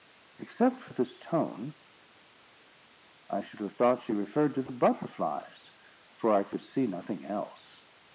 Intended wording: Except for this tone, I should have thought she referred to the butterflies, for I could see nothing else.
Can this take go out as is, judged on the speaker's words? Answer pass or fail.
pass